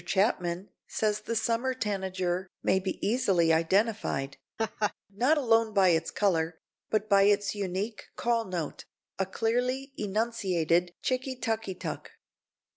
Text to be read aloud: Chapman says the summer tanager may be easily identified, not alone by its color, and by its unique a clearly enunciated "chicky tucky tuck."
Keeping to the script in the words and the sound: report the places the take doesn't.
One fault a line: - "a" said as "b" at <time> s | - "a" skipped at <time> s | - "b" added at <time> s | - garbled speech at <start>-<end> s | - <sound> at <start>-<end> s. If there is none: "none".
- laugh at 4.6-4.9 s
- "and" said as "but" at 6.9 s
- "call note" added at 8.2 s